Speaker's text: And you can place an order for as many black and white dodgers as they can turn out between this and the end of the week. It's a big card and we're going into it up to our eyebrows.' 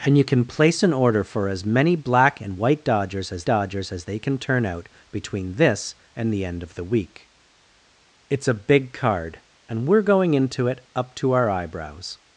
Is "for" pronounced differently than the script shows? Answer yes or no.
no